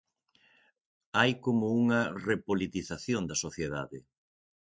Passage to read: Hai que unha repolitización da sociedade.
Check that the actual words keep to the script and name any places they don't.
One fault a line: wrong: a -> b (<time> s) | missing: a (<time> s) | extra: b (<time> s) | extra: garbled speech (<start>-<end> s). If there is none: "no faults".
wrong: que -> como (1.4 s)